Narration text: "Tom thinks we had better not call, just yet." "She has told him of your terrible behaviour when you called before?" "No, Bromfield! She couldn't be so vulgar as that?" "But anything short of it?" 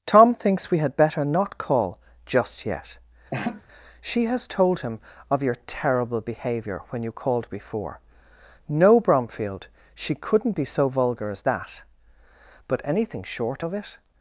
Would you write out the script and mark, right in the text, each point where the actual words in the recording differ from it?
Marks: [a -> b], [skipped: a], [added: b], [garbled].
"Tom thinks we had better not call, just yet." "She has told him of your terrible behaviour when you called before?" "No, Bromfield! She couldn't be so vulgar as that?" "But anything short of it?"